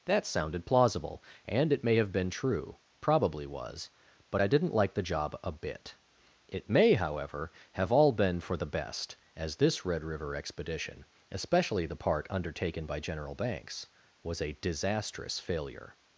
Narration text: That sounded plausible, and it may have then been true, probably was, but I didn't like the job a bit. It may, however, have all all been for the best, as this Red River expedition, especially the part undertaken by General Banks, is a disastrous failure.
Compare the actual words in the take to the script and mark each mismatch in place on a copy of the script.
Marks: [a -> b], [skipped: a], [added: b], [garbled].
That sounded plausible, and it may have [skipped: then] been true, probably was, but I didn't like the job a bit. It may, however, have all [skipped: all] been for the best, as this Red River expedition, especially the part undertaken by General Banks, [is -> was] a disastrous failure.